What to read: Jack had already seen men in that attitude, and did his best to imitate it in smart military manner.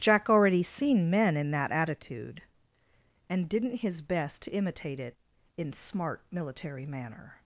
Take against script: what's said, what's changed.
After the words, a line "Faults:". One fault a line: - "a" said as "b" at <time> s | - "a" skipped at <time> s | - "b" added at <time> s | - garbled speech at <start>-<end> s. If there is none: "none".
Jack already seen men in that attitude, and didn't his best to imitate it in smart military manner.
Faults:
- "had" skipped at 0.3 s
- "did" said as "didn't" at 3.5 s